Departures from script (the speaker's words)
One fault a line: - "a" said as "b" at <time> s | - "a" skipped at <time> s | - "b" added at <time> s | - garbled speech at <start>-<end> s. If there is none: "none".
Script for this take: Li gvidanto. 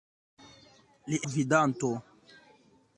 none